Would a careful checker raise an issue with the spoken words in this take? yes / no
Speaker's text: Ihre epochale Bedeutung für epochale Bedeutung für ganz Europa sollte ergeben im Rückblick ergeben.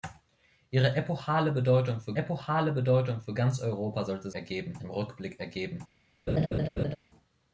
no